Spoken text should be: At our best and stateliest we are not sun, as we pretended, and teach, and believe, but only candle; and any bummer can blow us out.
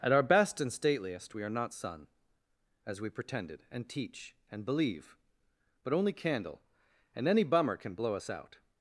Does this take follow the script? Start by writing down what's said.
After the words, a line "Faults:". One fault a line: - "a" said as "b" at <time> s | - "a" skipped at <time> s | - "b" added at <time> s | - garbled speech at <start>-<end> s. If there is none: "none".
At our best and stateliest we are not sun, as we pretended, and teach, and believe, but only candle; and any bummer can blow us out.
Faults:
none